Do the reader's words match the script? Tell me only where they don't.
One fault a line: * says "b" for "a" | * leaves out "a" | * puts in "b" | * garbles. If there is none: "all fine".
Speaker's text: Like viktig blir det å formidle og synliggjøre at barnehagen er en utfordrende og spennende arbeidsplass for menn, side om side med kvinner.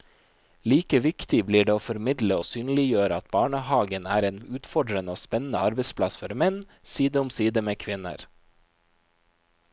all fine